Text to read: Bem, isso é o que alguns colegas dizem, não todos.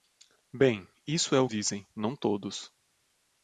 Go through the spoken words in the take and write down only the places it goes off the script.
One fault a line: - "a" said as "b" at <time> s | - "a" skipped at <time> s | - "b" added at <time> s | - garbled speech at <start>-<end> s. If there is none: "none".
- "que alguns colegas" skipped at 1.5 s